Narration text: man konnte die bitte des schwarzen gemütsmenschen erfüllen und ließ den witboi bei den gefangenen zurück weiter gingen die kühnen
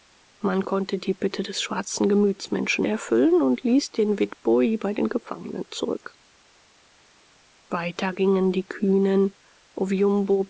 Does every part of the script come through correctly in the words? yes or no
yes